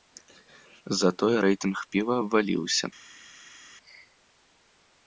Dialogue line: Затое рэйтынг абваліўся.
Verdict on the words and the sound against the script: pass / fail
fail